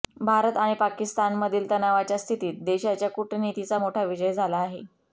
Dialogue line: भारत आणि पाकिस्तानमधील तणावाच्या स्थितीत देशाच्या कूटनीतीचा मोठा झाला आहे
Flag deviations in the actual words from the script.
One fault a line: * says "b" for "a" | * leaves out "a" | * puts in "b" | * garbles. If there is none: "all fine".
* puts in "विजय"